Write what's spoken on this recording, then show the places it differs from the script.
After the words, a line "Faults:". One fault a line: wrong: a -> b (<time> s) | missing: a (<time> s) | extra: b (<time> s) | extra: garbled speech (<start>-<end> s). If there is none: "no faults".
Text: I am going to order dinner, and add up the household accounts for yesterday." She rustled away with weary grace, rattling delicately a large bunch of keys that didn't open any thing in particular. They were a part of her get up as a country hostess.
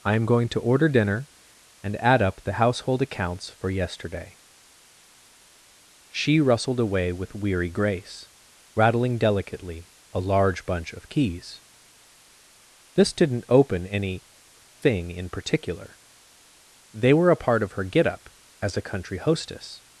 I am going to order dinner, and add up the household accounts for yesterday." She rustled away with weary grace, rattling delicately a large bunch of keys this didn't open any thing in particular. They were a part of her get up as a country hostess.
Faults:
wrong: that -> this (12.9 s)